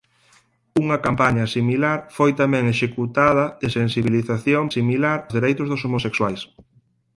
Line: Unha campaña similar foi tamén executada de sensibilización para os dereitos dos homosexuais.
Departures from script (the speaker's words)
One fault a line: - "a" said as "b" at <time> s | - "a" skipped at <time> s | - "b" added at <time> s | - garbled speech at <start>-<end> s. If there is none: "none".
- "para" said as "similar" at 4.8 s